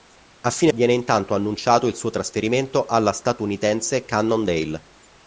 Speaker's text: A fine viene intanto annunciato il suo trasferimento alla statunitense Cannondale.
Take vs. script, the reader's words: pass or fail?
pass